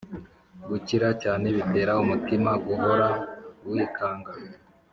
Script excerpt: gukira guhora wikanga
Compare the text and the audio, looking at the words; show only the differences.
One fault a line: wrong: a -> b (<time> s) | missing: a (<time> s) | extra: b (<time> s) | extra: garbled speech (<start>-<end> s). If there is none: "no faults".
extra: cyane bitera umutima (1.2 s)